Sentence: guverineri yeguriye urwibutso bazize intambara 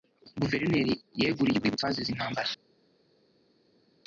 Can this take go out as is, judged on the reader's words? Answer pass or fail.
pass